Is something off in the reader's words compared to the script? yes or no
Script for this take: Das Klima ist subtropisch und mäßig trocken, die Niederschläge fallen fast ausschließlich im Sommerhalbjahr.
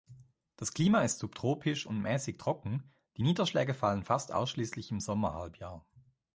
no